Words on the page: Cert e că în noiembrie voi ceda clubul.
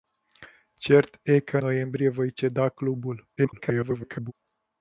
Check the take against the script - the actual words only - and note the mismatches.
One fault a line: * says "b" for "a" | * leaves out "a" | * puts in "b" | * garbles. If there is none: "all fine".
* leaves out "în"
* garbles